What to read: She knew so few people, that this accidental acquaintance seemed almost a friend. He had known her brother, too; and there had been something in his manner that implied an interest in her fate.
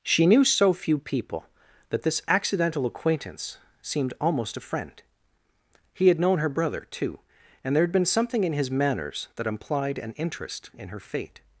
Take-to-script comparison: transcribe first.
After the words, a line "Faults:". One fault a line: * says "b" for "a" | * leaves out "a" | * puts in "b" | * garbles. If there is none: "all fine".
She knew so few people, that this accidental acquaintance seemed almost a friend. He had known her brother, too; and there had been something in his manners that implied an interest in her fate.
Faults:
* says "manners" for "manner"